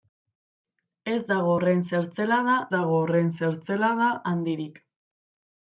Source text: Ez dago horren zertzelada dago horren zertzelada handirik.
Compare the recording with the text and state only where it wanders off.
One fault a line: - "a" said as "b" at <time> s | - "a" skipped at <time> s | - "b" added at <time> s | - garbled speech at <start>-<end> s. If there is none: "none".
none